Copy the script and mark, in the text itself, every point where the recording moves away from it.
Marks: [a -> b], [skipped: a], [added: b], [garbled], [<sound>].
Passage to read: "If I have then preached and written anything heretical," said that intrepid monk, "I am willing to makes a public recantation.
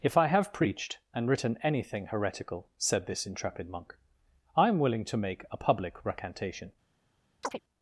"If I have [skipped: then] preached and written anything heretical," said [that -> this] intrepid monk, "I am willing to [makes -> make] a public recantation. [chirp]